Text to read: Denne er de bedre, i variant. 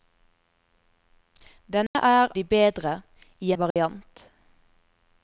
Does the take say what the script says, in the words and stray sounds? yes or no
no